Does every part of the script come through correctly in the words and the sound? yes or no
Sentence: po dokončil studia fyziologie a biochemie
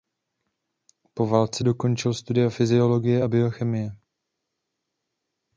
no